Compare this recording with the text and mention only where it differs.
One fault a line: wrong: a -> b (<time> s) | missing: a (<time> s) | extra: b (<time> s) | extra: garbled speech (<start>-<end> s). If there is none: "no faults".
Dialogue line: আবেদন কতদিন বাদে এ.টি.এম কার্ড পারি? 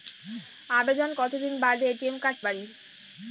no faults